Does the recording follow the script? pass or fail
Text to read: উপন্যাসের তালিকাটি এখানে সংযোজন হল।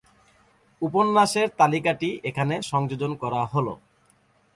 fail